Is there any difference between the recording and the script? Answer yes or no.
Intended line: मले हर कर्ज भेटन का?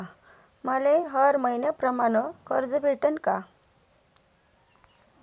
yes